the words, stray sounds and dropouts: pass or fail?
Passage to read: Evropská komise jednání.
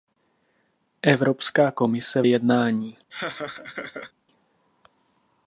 fail